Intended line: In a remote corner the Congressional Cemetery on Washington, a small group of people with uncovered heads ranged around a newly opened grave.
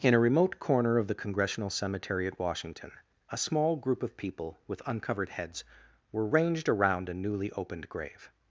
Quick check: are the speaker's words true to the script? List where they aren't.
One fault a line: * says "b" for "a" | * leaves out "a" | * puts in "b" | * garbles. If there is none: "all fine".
* puts in "of"
* says "at" for "on"
* puts in "were"